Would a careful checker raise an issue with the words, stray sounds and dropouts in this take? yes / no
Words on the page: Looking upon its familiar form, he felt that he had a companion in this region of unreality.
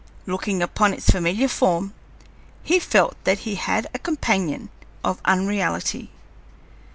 yes